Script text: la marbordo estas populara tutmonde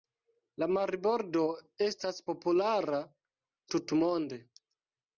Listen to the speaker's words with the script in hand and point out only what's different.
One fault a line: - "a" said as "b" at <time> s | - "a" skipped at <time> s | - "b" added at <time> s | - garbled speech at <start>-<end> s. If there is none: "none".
none